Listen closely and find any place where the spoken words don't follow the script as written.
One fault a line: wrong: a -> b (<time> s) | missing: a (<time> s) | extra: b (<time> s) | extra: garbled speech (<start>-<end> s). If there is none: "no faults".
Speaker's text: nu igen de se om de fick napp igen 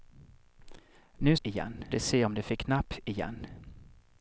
no faults